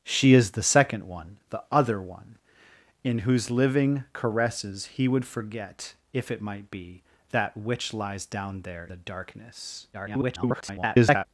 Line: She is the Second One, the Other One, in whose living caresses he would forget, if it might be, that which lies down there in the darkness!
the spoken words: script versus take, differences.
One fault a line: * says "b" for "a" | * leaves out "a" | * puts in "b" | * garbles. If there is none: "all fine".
* leaves out "in"
* garbles